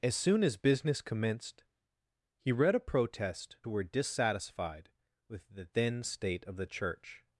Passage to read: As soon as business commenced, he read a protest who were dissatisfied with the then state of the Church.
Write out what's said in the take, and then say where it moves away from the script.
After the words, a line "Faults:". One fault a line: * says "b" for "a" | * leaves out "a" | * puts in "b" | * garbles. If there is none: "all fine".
As soon as business commenced, he read a protest who were dissatisfied with the then state of the Church.
Faults:
all fine